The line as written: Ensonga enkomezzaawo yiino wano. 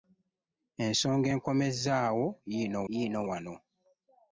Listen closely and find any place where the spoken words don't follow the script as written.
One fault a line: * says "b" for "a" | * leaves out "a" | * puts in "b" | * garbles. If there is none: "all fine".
* puts in "yiino"